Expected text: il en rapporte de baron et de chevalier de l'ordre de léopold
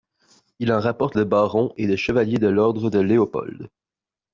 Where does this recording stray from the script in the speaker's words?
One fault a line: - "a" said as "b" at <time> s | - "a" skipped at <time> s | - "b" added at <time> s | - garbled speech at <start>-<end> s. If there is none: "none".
none